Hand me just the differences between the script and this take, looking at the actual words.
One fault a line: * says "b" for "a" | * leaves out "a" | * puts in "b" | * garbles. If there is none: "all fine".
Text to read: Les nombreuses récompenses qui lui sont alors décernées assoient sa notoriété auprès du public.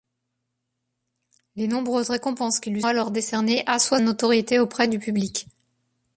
* leaves out "sont"
* leaves out "sa"